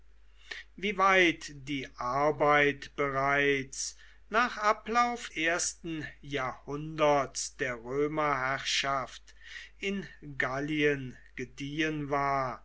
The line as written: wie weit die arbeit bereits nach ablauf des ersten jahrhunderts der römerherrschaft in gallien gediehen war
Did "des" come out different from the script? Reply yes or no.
yes